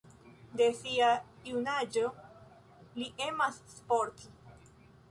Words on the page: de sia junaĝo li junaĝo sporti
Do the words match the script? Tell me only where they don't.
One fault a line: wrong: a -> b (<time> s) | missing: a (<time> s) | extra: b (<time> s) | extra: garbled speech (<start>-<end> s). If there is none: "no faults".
wrong: junaĝo -> emas (3.3 s)